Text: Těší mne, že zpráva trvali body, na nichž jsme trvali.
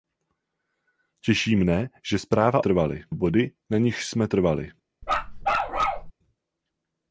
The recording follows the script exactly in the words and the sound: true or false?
false